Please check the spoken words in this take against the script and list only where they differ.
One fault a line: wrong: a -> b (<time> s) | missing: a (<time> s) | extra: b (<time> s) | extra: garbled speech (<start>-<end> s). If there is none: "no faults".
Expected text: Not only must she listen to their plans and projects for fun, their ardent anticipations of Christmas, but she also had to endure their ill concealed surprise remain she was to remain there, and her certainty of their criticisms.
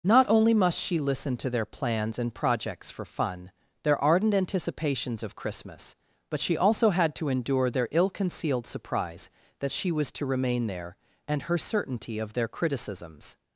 wrong: remain -> that (9.6 s)